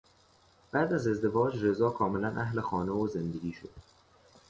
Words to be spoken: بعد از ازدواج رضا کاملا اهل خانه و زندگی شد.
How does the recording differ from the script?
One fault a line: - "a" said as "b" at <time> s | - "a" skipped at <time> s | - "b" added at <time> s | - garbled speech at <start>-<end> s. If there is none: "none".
none